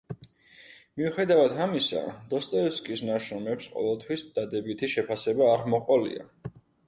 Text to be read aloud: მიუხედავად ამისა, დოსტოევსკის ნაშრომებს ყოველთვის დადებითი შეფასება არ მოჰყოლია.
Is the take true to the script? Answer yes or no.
yes